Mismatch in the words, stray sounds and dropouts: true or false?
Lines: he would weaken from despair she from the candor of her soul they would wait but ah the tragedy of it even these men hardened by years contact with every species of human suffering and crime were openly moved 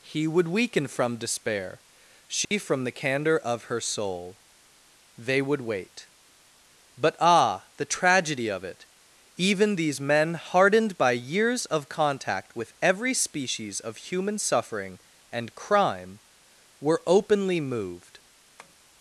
true